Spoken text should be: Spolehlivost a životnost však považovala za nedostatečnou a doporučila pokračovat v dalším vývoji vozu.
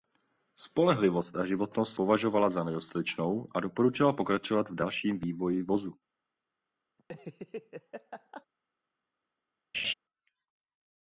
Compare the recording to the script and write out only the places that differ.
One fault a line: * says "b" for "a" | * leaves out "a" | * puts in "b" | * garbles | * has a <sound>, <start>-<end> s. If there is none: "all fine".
* leaves out "však"
* has a laugh, 7.0-8.5 s
* has a laugh, 9.7-9.9 s